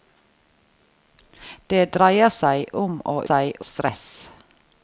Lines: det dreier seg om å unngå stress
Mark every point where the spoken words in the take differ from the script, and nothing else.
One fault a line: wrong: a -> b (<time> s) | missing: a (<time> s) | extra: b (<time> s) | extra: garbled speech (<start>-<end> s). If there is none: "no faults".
wrong: unngå -> seg (3.2 s)